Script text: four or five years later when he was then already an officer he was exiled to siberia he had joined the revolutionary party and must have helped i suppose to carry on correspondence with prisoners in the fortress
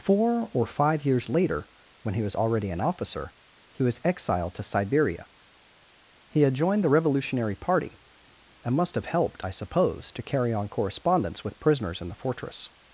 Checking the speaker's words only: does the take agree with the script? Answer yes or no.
no